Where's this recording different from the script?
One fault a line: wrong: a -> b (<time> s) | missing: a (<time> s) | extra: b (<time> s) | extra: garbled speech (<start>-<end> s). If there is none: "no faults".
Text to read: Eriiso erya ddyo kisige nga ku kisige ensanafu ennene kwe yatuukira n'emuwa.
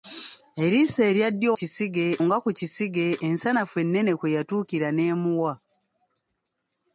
no faults